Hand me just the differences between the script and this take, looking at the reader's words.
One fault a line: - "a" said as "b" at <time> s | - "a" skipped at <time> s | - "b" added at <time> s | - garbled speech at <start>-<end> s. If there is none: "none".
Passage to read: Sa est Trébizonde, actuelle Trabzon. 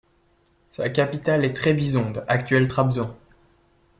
- "capitale" added at 0.9 s